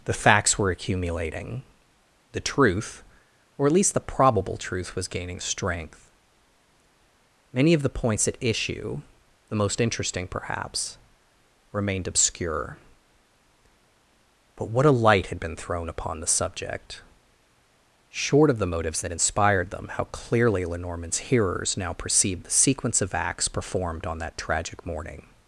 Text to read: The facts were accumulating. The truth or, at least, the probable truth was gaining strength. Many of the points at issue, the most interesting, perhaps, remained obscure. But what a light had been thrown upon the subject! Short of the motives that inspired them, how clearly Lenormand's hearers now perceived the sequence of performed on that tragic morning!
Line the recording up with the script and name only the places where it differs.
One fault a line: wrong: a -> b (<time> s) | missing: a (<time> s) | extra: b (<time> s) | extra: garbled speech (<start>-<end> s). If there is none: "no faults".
extra: acts (23.1 s)